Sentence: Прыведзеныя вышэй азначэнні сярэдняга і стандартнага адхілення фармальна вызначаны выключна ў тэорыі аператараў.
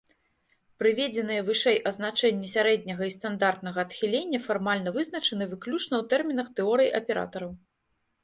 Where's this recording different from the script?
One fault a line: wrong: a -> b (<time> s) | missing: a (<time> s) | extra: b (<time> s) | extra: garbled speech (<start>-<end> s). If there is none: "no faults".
extra: тэрмінах (6.2 s)